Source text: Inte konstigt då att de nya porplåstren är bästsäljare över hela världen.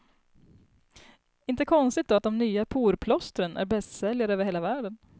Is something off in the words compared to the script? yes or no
no